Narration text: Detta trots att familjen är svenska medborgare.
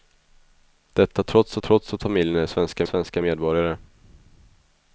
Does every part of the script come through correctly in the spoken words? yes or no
no